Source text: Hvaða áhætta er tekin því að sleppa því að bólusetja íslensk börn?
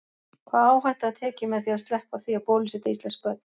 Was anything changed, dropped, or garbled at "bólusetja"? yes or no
no